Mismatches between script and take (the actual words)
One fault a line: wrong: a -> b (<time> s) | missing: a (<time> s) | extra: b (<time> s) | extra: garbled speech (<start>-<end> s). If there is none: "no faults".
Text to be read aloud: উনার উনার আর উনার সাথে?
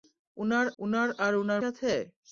no faults